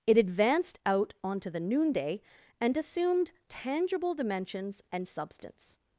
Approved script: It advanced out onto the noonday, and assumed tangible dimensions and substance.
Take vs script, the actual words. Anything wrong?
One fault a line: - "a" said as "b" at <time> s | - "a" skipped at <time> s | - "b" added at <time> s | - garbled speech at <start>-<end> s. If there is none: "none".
none